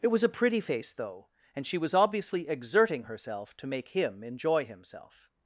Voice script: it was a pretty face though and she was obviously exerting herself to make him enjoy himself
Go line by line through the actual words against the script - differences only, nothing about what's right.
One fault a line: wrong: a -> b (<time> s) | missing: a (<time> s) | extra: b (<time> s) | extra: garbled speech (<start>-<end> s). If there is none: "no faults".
no faults